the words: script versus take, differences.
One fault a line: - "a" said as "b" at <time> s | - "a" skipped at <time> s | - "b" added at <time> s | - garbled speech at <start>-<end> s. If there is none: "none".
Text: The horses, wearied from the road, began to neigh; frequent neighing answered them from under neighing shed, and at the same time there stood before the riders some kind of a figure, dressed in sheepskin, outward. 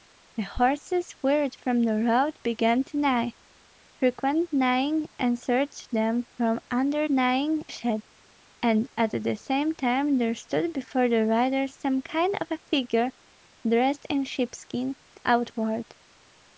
none